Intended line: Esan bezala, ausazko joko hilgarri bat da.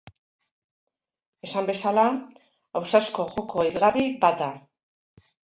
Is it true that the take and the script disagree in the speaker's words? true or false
false